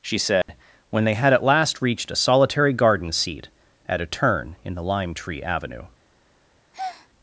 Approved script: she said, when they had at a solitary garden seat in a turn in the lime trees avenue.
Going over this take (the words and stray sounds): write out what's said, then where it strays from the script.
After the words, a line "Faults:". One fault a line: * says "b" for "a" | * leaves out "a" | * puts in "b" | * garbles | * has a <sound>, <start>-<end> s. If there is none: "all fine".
she said, when they had at last reached a solitary garden seat at a turn in the lime tree avenue.
Faults:
* has a dropout, 0.4-0.5 s
* puts in "last reached"
* says "at" for "in"
* says "tree" for "trees"
* has a breath, 6.7-7.1 s